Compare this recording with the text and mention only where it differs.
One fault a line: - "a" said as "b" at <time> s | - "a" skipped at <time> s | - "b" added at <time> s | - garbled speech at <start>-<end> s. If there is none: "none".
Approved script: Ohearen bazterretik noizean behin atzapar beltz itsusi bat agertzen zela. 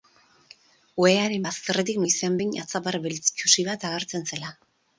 none